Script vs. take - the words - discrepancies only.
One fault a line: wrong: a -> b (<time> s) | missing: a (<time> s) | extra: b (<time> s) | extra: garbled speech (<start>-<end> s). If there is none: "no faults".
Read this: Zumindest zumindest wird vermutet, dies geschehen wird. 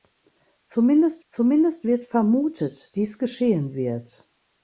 no faults